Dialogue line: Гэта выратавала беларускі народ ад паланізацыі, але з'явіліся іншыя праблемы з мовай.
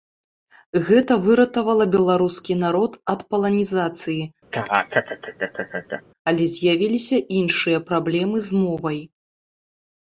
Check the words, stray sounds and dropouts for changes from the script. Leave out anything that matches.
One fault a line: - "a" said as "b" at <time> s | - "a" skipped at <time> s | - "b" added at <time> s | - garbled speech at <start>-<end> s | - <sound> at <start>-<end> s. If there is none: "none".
- laugh at 4.5-6.0 s